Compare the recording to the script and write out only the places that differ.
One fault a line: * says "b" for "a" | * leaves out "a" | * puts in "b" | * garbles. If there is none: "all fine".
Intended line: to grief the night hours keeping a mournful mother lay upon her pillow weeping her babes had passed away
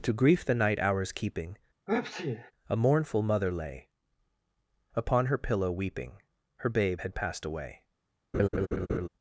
* says "babe" for "babes"